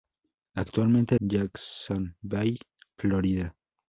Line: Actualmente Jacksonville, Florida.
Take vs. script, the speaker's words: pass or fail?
pass